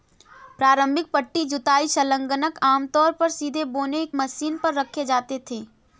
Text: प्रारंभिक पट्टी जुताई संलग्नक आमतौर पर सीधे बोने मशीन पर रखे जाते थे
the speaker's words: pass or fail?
pass